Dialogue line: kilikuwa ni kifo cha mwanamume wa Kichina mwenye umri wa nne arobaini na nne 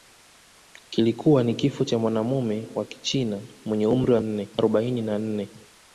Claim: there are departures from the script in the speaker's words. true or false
false